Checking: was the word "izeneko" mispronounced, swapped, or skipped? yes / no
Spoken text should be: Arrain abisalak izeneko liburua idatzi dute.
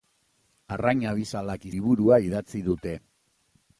yes